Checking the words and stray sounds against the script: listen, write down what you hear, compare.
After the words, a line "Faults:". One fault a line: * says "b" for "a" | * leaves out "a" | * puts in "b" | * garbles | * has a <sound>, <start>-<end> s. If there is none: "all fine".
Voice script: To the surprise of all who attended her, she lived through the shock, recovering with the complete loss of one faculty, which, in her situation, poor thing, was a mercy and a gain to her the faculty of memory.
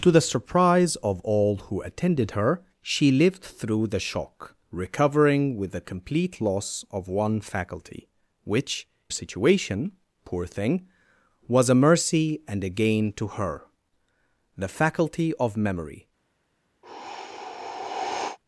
To the surprise of all who attended her, she lived through the shock, recovering with the complete loss of one faculty, which, situation, poor thing, was a mercy and a gain to her the faculty of memory.
Faults:
* leaves out "in her"
* has a sigh, 16.8-18.4 s